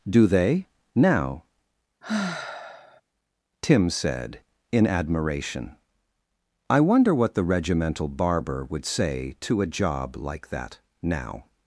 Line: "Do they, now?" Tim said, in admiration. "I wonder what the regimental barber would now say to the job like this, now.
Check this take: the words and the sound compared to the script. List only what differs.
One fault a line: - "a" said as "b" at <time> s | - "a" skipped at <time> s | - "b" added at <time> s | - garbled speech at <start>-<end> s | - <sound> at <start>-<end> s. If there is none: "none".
- sigh at 2.0-3.0 s
- "now" skipped at 8.9 s
- "the" said as "a" at 9.6 s
- "this" said as "that" at 10.5 s